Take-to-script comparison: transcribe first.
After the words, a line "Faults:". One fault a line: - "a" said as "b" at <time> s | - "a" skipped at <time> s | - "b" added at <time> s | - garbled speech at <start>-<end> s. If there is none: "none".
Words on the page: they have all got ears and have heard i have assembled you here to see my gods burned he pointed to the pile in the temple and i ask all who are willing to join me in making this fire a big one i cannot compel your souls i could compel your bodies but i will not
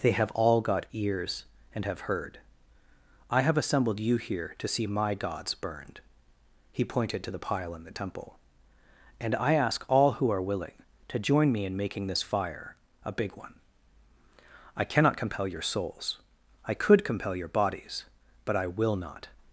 they have all got ears and have heard i have assembled you here to see my gods burned he pointed to the pile in the temple and i ask all who are willing to join me in making this fire a big one i cannot compel your souls i could compel your bodies but i will not
Faults:
none